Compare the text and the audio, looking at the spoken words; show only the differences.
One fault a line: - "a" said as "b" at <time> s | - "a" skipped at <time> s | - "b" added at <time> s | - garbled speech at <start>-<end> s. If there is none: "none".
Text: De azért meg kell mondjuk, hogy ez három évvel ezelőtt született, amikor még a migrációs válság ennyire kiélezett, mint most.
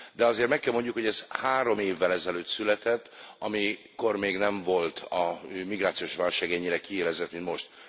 - "nem volt" added at 4.4 s